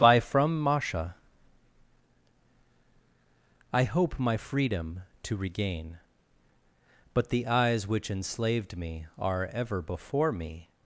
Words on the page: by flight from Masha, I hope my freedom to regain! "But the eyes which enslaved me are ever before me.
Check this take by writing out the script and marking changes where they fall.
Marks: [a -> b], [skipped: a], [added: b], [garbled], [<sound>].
by [skipped: flight] from Masha, I hope my freedom to regain! "But the eyes which enslaved me are ever before me.